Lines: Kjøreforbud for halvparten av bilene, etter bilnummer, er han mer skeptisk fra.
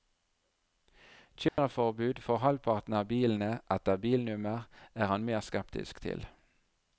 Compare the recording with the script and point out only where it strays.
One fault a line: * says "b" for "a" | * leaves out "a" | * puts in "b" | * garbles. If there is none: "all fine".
* says "til" for "fra"